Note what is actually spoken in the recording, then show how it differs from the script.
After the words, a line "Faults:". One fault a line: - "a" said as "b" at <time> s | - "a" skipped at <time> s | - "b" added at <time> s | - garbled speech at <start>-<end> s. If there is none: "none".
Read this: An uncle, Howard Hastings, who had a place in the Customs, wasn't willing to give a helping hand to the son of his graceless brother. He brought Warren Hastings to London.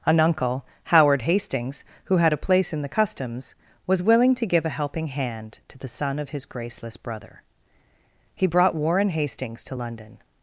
An uncle, Howard Hastings, who had a place in the Customs, was willing to give a helping hand to the son of his graceless brother. He brought Warren Hastings to London.
Faults:
- "wasn't" said as "was" at 3.9 s